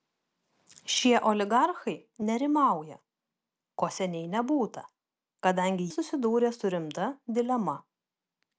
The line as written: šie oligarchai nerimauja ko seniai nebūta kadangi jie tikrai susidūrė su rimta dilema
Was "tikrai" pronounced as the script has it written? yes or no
no